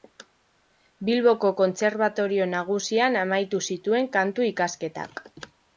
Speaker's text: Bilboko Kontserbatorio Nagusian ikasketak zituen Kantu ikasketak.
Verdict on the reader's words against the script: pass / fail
fail